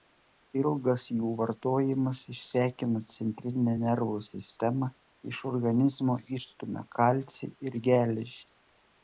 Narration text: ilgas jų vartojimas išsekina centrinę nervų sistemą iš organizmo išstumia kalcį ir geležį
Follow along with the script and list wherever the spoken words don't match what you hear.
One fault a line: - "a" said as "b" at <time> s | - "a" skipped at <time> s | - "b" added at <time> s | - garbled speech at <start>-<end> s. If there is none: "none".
none